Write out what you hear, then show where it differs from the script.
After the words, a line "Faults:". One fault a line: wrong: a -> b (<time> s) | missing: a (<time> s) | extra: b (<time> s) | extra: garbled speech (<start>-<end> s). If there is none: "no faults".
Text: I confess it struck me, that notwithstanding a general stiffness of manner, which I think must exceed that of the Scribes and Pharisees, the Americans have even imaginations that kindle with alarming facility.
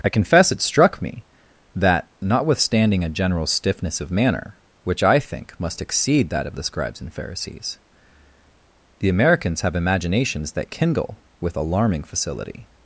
I confess it struck me, that notwithstanding a general stiffness of manner, which I think must exceed that of the Scribes and Pharisees, the Americans have imaginations that kindle with alarming facility.
Faults:
missing: even (9.8 s)